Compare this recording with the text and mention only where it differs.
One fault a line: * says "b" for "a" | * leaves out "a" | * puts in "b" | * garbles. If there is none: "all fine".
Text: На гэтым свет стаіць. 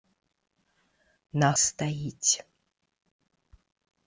* leaves out "гэтым свет"